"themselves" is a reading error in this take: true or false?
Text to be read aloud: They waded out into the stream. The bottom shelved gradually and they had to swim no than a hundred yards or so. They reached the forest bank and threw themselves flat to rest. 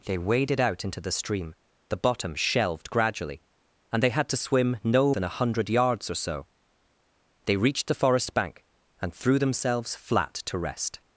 false